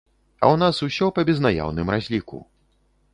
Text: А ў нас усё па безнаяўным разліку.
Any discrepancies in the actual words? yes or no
no